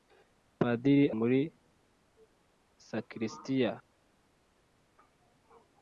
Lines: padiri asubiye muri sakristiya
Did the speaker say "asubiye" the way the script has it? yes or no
no